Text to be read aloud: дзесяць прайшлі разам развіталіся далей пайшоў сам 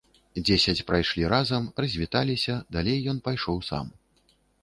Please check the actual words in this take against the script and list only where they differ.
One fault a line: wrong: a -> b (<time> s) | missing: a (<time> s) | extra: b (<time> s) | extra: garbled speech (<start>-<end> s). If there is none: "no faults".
extra: ён (3.1 s)